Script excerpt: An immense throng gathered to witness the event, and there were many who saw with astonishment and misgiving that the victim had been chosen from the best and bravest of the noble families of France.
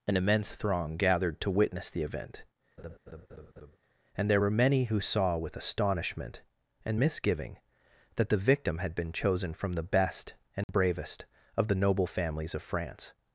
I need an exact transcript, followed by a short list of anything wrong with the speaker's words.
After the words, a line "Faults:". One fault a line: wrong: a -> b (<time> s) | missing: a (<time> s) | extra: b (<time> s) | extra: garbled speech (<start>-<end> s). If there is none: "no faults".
An immense throng gathered to witness the event, and there were many who saw with astonishment and misgiving that the victim had been chosen from the best and bravest of the noble families of France.
Faults:
no faults